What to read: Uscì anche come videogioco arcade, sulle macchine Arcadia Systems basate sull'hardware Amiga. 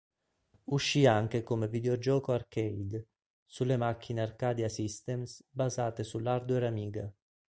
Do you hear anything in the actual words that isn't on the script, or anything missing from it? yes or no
no